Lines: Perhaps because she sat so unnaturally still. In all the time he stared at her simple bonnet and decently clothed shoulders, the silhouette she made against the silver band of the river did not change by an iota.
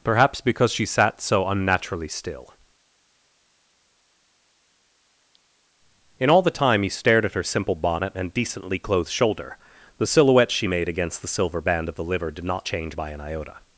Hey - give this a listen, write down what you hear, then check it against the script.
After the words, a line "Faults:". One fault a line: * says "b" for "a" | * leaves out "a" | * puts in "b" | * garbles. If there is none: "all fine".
Perhaps because she sat so unnaturally still. In all the time he stared at her simple bonnet and decently clothed shoulder, the silhouette she made against the silver band of the liver did not change by an iota.
Faults:
* says "shoulder" for "shoulders"
* says "liver" for "river"